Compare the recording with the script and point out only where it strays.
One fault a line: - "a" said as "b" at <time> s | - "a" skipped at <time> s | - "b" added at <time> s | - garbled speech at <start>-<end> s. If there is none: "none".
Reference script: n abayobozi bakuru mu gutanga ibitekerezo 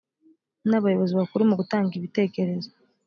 none